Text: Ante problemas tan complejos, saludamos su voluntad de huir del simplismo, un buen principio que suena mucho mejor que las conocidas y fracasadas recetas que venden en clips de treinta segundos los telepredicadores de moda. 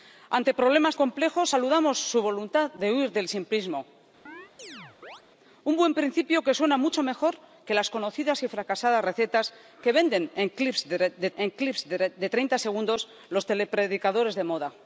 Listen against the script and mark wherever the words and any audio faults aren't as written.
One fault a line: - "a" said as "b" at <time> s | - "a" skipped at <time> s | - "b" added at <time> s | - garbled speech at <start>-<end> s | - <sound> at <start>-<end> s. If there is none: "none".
- "tan" skipped at 0.9 s
- chirp at 4.3-5.2 s
- "en clips de" added at 11.4 s